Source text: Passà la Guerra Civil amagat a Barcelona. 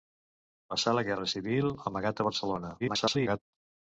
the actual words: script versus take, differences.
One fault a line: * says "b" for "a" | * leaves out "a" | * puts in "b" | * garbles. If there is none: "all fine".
* garbles